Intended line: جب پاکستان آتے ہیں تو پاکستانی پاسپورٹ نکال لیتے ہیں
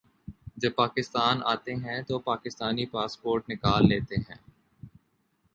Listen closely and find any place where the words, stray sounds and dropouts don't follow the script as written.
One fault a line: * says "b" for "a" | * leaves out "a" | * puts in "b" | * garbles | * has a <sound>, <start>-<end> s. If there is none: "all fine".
all fine